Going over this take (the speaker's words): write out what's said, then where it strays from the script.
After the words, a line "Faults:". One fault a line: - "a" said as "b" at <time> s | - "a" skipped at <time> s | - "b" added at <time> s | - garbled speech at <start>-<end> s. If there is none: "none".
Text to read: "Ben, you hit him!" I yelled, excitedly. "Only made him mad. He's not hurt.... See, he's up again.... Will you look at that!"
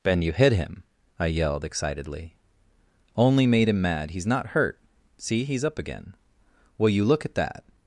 "Ben, you hit him!" I yelled, excitedly. "Only made him mad. He's not hurt.... See, he's up again.... Will you look at that!"
Faults:
none